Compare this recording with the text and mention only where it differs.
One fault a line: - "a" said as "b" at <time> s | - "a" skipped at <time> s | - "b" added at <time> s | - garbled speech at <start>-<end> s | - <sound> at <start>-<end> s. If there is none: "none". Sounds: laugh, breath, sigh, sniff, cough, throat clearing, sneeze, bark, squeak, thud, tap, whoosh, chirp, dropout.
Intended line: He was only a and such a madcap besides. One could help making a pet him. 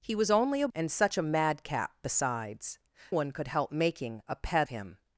none